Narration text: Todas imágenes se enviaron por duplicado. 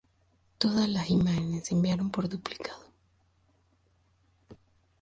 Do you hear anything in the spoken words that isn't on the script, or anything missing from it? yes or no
yes